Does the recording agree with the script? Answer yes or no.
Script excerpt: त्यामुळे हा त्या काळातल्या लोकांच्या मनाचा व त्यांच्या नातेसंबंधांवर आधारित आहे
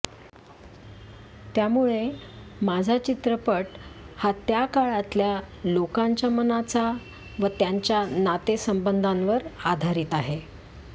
no